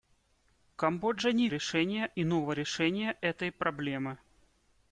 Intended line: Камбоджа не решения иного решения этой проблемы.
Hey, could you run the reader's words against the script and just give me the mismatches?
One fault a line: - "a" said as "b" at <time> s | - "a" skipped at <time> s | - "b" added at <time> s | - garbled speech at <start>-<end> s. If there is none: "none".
none